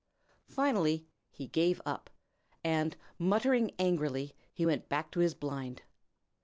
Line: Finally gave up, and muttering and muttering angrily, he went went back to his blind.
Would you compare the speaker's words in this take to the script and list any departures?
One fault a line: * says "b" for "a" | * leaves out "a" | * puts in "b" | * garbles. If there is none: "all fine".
* puts in "he"
* leaves out "and muttering"
* leaves out "went"